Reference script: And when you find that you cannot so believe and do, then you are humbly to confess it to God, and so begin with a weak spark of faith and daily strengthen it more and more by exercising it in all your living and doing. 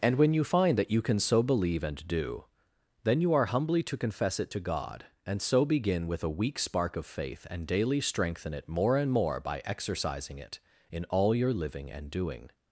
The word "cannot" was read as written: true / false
false